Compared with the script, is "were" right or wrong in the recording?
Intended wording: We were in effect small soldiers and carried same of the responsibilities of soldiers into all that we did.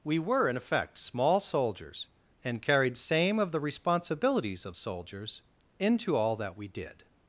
right